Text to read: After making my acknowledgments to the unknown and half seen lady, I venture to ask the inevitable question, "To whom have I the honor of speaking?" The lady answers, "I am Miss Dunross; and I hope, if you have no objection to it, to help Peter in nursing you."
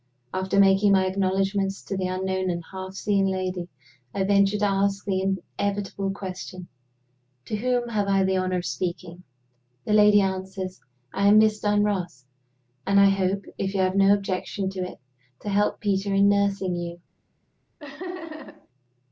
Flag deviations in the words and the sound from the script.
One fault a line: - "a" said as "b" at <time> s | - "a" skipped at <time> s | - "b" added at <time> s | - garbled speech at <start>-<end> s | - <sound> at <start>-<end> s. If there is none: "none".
- laugh at 17.8-18.7 s